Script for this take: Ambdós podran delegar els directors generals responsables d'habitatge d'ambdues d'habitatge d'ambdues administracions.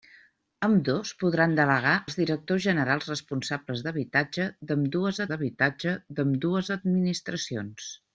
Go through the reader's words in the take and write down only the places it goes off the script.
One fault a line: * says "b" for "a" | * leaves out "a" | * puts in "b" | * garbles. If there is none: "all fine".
all fine